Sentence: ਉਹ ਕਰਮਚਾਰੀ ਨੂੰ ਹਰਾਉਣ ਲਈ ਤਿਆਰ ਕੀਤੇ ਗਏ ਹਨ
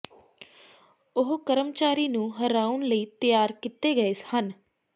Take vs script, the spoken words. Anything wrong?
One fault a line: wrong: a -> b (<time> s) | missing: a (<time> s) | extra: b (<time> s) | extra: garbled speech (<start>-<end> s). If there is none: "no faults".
no faults